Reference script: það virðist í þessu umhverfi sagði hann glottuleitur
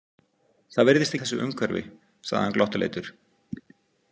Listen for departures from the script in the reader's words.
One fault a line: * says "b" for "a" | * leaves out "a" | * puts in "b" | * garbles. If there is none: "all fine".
all fine